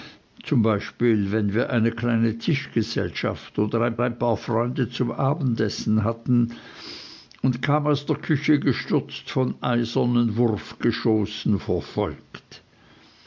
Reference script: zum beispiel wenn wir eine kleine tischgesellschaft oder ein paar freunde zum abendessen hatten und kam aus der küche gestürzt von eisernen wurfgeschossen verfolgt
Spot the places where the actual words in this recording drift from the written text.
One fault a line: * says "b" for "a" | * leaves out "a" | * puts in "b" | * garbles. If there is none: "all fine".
* puts in "ein"